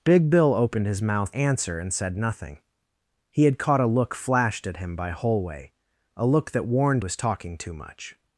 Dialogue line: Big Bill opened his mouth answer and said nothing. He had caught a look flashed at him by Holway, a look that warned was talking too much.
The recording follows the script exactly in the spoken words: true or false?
true